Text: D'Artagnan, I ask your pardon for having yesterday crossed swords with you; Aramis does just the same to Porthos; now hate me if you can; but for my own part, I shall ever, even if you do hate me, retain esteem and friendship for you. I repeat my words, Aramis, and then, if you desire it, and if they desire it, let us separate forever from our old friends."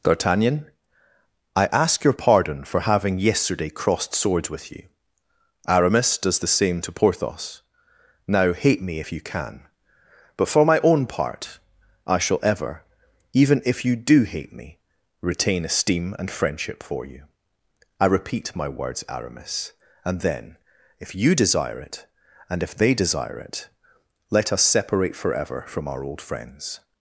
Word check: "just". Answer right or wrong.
wrong